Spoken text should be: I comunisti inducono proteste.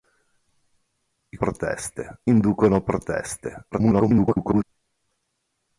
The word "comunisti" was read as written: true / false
false